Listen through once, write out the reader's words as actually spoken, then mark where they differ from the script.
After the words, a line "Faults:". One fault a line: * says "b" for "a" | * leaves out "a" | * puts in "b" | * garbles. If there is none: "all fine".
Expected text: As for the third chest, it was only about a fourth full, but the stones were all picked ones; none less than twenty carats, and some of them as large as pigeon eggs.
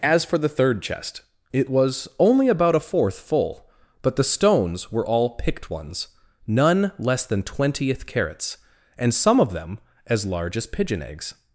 As for the third chest, it was only about a fourth full, but the stones were all picked ones; none less than twentieth carats, and some of them as large as pigeon eggs.
Faults:
* says "twentieth" for "twenty"